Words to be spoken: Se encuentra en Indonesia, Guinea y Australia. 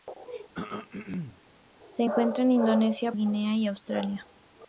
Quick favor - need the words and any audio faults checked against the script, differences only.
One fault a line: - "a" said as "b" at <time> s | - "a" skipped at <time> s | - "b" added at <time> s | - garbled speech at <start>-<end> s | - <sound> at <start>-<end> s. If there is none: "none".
- throat clearing at 0.5-1.4 s